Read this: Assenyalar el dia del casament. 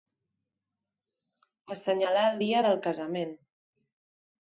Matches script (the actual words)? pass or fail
pass